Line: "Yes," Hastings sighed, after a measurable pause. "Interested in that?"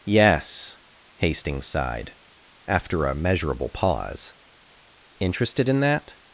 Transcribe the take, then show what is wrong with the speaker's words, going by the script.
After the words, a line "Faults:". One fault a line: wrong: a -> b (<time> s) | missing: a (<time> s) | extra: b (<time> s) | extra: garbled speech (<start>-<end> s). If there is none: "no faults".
"Yes," Hastings sighed, after a measurable pause. "Interested in that?"
Faults:
no faults